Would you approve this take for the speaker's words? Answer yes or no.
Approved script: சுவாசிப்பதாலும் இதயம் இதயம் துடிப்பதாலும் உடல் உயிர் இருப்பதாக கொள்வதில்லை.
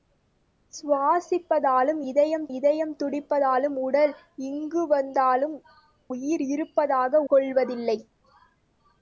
yes